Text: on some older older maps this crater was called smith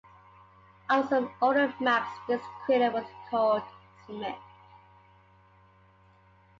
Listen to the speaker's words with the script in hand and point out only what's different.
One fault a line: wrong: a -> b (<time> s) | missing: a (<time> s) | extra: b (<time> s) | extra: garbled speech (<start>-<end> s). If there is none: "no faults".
missing: older (1.7 s)